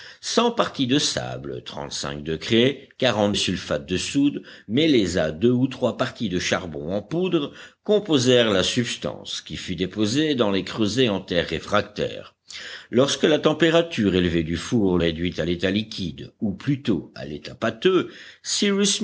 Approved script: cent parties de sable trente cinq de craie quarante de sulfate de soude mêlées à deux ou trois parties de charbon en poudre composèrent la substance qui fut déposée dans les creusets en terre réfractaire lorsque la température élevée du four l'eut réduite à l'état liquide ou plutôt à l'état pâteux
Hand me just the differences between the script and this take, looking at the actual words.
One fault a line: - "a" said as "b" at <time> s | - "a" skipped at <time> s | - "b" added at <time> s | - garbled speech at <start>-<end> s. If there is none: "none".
- "de" skipped at 3.3 s
- "l'eut" skipped at 15.0 s